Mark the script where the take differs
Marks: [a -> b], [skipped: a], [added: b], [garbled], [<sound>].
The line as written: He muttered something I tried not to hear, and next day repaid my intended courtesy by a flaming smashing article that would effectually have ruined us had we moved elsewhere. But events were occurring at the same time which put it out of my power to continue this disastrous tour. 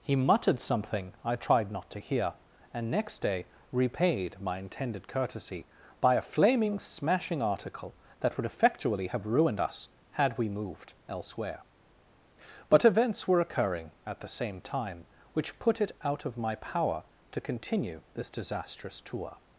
He muttered something I tried not to hear, and next day repaid my intended courtesy by a flaming smashing article that would effectually have ruined us had we moved elsewhere. But events were occurring at the same time which put it out of my power to continue this disastrous tour.